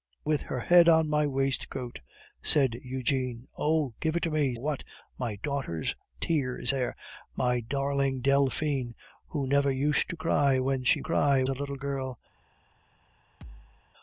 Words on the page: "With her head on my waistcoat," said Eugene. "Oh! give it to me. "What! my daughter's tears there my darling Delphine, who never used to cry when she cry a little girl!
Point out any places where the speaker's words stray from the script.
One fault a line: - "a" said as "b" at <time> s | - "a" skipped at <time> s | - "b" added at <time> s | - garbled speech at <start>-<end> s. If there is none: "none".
none